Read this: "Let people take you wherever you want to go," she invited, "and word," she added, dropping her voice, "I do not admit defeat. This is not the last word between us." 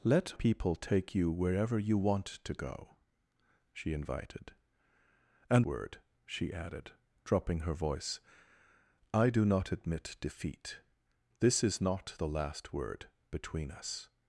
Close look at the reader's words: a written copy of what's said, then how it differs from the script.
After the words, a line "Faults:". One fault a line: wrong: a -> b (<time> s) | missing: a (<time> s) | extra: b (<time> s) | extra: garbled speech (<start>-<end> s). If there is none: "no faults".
"Let people take you wherever you want to go," she invited, "and word," she added, dropping her voice, "I do not admit defeat. This is not the last word between us."
Faults:
no faults